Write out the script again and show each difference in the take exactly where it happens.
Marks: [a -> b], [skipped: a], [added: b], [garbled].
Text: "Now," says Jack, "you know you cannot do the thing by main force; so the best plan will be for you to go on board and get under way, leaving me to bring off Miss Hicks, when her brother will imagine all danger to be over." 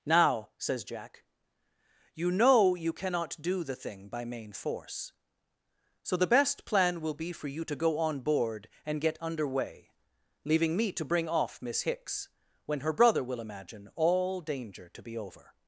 "Now," says Jack, "you know you cannot do the thing by main force; so the best plan will be for you to go on board and get under way, leaving me to bring off Miss Hicks, when her brother will imagine all danger to be over."